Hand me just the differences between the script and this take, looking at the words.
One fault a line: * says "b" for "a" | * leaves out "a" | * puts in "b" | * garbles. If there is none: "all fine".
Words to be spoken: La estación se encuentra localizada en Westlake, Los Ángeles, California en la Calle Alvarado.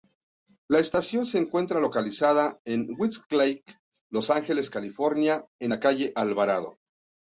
all fine